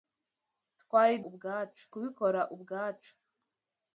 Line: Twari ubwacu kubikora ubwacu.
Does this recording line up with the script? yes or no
yes